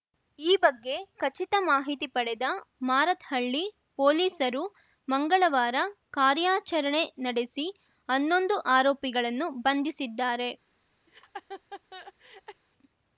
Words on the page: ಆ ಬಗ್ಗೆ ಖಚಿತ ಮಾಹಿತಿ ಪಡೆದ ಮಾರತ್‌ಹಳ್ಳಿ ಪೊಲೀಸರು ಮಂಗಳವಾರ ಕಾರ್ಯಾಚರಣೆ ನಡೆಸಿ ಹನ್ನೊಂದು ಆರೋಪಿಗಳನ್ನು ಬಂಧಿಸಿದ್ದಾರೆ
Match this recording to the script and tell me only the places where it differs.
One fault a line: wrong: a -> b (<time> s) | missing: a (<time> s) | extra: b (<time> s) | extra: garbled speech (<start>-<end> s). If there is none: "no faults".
wrong: ಆ -> ಈ (0.4 s)